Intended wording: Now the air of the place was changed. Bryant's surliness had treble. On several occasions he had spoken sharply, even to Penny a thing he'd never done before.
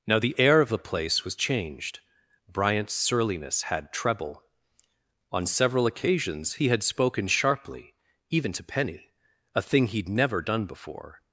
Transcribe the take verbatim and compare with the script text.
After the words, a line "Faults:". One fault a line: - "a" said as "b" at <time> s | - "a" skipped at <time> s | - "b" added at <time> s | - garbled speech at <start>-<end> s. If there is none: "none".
Now the air of the place was changed. Bryant's surliness had treble. On several occasions he had spoken sharply, even to Penny a thing he'd never done before.
Faults:
none